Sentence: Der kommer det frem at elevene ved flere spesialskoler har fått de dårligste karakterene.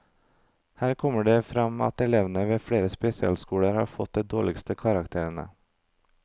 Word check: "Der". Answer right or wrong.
wrong